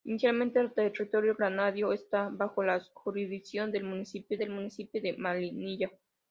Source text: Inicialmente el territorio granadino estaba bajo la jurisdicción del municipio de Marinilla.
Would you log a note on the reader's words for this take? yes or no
yes